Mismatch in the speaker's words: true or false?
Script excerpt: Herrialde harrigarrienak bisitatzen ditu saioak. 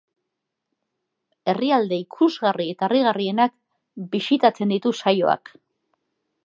true